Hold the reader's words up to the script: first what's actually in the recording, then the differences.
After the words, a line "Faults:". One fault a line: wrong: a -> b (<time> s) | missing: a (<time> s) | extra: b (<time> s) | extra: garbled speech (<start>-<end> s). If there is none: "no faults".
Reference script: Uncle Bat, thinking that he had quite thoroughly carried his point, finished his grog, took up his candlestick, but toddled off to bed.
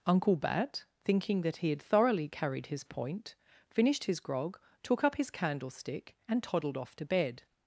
Uncle Bat, thinking that he had thoroughly carried his point, finished his grog, took up his candlestick, and toddled off to bed.
Faults:
missing: quite (1.8 s)
wrong: but -> and (6.3 s)